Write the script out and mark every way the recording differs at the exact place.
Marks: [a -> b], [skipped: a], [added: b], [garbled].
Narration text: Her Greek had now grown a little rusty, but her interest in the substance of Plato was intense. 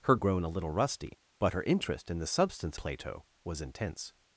Her [skipped: Greek had now] grown a little rusty, but her interest in the substance [skipped: of] Plato was intense.